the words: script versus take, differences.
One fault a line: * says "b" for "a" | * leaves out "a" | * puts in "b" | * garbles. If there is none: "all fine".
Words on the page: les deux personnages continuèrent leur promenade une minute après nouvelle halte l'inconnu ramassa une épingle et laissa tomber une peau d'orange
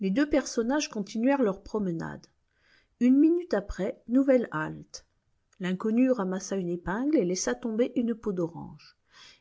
all fine